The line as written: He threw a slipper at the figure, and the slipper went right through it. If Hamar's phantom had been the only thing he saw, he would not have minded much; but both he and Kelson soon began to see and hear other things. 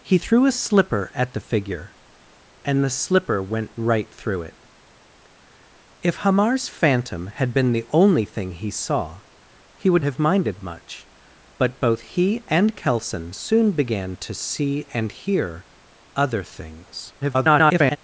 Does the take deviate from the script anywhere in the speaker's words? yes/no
yes